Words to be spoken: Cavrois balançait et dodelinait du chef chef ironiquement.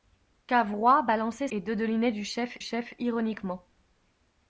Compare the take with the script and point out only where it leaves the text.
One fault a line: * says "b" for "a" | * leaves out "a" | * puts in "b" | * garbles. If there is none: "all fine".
all fine